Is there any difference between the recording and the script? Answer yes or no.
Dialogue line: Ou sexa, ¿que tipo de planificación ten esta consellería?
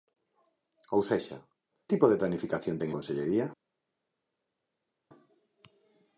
yes